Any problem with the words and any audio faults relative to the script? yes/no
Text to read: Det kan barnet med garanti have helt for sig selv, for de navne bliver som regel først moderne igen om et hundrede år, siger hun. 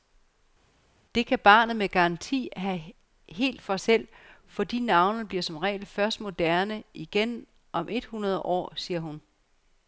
yes